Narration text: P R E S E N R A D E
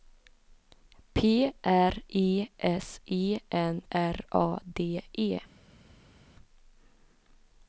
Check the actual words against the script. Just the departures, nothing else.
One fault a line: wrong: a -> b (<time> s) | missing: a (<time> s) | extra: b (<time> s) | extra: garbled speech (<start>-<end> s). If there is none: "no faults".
no faults